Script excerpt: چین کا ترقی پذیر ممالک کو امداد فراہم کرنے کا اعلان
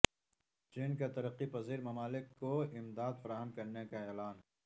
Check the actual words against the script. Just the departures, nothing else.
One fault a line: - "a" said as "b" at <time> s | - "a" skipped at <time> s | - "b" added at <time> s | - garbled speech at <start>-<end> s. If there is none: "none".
none